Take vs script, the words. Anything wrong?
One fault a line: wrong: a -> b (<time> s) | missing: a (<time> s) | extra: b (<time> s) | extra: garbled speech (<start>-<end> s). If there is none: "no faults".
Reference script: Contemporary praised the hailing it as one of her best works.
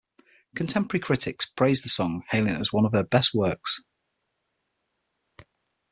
extra: critics (1.0 s)
extra: song (1.9 s)